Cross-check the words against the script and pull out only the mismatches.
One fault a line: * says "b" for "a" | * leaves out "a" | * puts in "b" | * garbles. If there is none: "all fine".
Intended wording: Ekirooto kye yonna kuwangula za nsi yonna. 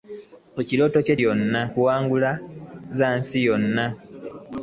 all fine